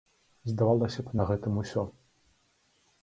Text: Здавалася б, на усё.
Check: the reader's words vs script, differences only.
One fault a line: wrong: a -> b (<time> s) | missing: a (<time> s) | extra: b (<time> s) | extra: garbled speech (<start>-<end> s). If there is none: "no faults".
extra: гэтым (1.3 s)